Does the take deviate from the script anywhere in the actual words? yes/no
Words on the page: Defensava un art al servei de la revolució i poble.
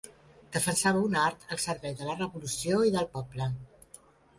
yes